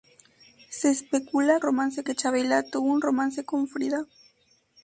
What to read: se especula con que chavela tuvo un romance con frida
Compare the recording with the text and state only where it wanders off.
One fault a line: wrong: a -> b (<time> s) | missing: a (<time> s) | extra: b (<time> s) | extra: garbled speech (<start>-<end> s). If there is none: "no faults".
wrong: con -> romance (1.6 s)